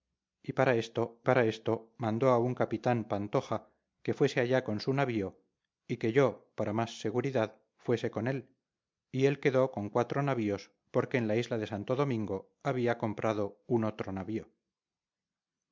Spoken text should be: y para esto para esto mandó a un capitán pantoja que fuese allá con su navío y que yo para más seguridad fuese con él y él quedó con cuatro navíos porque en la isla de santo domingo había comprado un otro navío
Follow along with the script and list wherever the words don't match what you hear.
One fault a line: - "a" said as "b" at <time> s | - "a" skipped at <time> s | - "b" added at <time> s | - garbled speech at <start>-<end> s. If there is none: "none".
none